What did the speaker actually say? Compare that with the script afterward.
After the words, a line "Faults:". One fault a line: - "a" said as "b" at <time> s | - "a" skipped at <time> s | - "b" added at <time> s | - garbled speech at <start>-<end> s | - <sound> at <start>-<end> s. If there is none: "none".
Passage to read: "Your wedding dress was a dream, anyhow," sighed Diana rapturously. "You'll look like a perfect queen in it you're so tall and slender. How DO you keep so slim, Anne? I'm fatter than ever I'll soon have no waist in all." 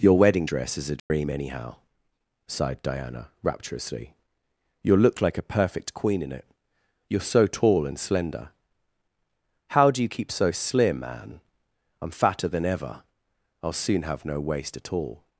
"Your wedding dress is a dream, anyhow," sighed Diana rapturously. "You'll look like a perfect queen in it you're so tall and slender. How DO you keep so slim, Anne? I'm fatter than ever I'll soon have no waist at all."
Faults:
- "was" said as "is" at 0.8 s
- dropout at 1.0-1.1 s
- "in" said as "at" at 14.8 s